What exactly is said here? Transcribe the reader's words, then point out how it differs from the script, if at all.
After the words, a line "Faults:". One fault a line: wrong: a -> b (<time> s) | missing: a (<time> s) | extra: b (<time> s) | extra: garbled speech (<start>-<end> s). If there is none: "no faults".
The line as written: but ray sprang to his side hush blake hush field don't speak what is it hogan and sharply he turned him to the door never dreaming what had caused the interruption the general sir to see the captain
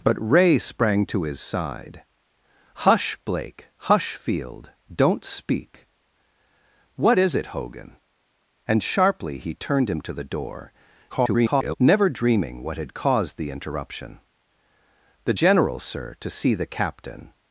but ray sprang to his side hush blake hush field don't speak what is it hogan and sharply he turned him to the door [garbled] never dreaming what had caused the interruption the general sir to see the captain
Faults:
extra: garbled speech (11.1-11.8 s)